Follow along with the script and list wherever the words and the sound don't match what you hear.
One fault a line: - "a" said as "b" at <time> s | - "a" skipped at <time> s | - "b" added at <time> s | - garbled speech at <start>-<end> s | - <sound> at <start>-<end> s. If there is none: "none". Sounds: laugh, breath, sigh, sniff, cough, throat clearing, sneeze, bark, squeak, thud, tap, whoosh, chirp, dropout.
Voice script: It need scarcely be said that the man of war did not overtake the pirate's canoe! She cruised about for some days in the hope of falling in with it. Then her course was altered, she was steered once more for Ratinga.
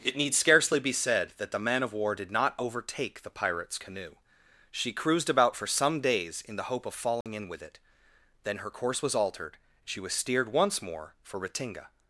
- dropout at 7.2-7.3 s